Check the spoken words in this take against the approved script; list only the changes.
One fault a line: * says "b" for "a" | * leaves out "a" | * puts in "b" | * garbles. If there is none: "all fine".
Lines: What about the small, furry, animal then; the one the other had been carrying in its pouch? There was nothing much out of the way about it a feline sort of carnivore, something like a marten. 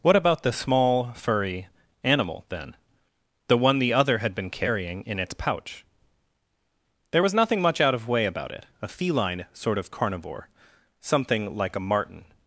* leaves out "the"